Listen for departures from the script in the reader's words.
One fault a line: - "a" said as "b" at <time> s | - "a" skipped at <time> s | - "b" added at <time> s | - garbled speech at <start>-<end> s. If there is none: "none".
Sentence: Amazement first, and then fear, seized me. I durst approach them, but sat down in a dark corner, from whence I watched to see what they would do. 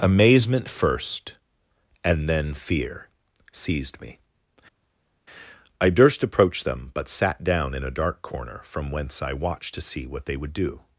none